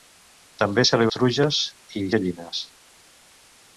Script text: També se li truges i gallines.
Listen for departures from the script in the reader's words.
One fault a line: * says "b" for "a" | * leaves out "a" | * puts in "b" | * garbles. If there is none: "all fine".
all fine